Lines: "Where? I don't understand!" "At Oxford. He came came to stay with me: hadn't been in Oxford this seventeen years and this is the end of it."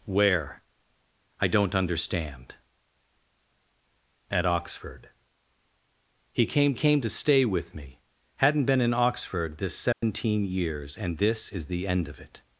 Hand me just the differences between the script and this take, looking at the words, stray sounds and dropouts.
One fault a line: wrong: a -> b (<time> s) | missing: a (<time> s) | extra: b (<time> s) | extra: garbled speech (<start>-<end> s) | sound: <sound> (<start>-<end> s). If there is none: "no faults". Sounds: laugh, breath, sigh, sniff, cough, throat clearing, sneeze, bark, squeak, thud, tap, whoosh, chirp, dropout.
sound: dropout (9.9-10.0 s)